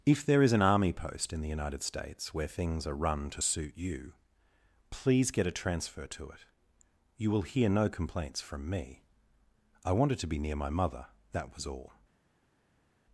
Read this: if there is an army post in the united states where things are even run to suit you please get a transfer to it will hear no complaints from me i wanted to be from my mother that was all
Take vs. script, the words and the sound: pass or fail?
fail